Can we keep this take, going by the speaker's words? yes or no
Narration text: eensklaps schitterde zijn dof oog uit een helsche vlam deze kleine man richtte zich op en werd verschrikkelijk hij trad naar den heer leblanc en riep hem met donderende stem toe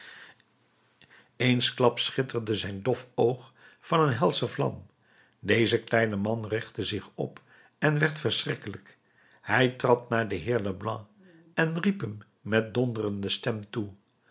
no